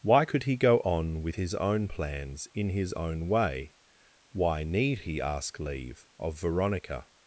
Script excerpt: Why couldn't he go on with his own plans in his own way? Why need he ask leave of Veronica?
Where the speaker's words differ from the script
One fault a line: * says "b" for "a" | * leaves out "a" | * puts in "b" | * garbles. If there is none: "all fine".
* says "could" for "couldn't"